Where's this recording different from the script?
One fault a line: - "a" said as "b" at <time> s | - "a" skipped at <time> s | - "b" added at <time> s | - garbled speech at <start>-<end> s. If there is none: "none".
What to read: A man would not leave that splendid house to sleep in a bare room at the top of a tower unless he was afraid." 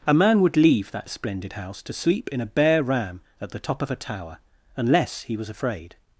- "not" skipped at 0.6 s
- "room" said as "ram" at 2.8 s